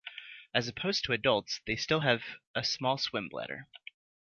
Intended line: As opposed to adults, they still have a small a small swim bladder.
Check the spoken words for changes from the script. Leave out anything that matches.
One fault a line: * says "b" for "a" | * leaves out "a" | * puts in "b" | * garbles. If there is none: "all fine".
* leaves out "a small"